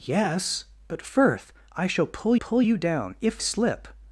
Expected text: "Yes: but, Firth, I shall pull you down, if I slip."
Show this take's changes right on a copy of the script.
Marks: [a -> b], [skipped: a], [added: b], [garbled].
"Yes: but, Firth, I shall pull [added: pull] you down, if [skipped: I] slip."